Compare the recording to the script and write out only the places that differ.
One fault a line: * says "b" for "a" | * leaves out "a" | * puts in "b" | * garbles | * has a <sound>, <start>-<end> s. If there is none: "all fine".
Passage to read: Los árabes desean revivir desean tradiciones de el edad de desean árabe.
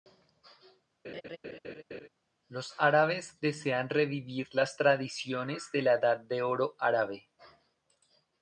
* has a laugh, 1.0-2.1 s
* says "las" for "desean"
* says "la" for "el"
* says "oro" for "desean"